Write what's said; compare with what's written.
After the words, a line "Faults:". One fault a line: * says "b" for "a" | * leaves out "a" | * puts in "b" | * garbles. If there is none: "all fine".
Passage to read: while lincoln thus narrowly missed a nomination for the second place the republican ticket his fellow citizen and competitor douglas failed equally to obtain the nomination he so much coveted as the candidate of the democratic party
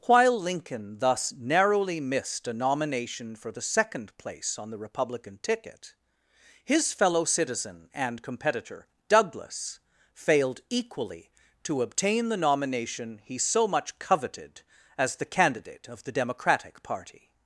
while lincoln thus narrowly missed a nomination for the second place on the republican ticket his fellow citizen and competitor douglas failed equally to obtain the nomination he so much coveted as the candidate of the democratic party
Faults:
* puts in "on"